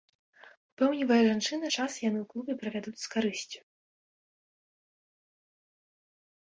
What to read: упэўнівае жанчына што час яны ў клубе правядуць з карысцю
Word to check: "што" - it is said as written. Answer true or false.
false